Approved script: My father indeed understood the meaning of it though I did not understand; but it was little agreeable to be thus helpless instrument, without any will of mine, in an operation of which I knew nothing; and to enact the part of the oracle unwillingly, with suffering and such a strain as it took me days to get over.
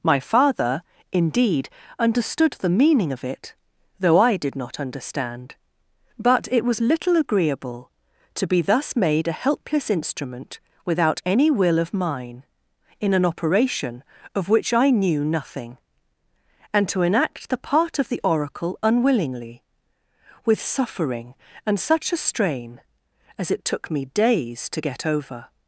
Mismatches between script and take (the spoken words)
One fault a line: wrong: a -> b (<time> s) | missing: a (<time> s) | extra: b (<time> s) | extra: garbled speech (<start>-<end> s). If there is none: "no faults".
extra: made a (8.9 s)